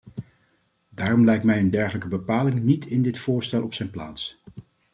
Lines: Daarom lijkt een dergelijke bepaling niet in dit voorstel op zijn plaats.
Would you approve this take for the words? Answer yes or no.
no